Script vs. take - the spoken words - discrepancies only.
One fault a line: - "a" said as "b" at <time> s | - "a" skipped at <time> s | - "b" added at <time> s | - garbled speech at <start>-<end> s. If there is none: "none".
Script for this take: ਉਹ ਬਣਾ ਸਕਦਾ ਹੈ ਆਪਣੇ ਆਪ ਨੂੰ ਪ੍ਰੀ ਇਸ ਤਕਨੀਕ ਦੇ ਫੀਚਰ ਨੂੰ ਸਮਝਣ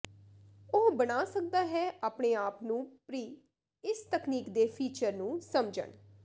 none